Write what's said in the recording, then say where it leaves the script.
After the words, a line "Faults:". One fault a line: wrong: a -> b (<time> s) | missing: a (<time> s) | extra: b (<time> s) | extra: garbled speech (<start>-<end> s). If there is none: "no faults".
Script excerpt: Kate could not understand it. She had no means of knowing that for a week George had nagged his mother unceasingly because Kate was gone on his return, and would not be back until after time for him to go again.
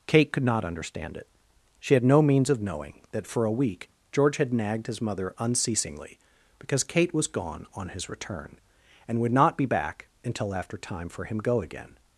Kate could not understand it. She had no means of knowing that for a week George had nagged his mother unceasingly because Kate was gone on his return, and would not be back until after time for him go again.
Faults:
missing: to (11.4 s)